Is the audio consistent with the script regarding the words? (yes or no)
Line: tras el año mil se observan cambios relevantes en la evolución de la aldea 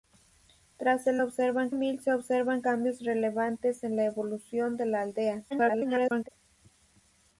no